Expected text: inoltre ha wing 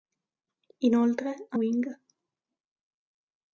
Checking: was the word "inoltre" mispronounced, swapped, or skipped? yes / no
no